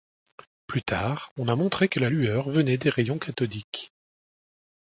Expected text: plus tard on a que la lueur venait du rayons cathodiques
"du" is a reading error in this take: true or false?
true